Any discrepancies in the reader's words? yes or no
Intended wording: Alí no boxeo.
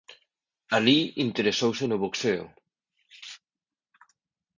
yes